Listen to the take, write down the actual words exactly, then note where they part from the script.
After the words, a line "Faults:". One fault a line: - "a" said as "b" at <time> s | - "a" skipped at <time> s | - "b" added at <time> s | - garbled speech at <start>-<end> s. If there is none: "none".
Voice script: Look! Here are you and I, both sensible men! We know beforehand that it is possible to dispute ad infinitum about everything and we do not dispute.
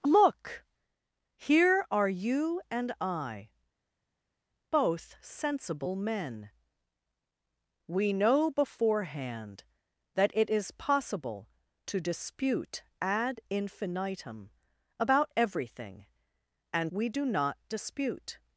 Look! Here are you and I, both sensible men! We know beforehand that it is possible to dispute ad infinitum about everything and we do not dispute.
Faults:
none